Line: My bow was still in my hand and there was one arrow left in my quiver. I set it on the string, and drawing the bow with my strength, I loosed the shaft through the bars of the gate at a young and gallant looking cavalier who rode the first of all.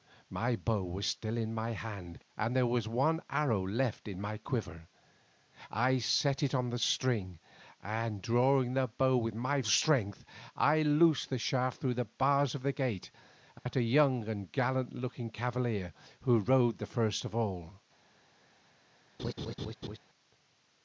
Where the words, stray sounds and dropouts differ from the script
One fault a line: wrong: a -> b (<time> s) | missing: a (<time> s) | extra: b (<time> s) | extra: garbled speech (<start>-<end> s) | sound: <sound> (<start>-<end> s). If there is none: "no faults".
sound: dropout (13.6-13.7 s)
sound: laugh (19.2-20.0 s)